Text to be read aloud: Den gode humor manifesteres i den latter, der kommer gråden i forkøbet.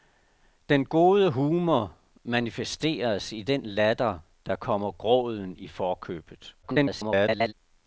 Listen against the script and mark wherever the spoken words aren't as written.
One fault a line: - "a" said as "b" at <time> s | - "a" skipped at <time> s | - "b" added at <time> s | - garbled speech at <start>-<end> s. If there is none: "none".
- garbled speech at 6.6-7.5 s